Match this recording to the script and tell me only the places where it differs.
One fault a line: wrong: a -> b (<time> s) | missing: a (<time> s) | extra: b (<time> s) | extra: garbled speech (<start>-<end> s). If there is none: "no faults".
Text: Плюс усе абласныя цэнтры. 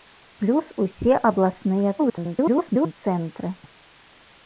extra: garbled speech (2.0-2.9 s)